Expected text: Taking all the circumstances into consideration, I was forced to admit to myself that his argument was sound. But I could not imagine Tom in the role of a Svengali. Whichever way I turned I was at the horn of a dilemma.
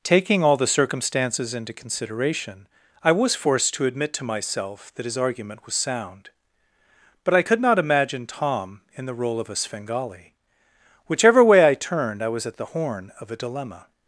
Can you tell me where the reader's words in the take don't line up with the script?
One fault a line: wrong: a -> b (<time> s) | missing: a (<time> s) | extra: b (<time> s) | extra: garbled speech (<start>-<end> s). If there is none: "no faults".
no faults